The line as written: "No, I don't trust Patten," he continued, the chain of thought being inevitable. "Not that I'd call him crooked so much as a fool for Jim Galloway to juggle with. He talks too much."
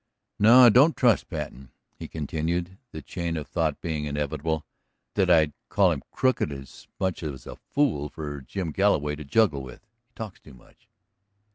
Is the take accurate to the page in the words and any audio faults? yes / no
no